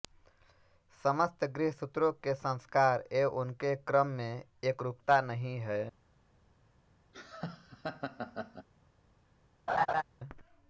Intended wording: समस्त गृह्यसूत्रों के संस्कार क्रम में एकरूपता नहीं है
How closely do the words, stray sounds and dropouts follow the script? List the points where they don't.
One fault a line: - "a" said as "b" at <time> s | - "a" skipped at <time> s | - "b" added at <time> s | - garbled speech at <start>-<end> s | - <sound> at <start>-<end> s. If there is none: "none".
- "एवं उनके" added at 3.1 s
- laugh at 7.1-8.7 s
- laugh at 9.7-10.0 s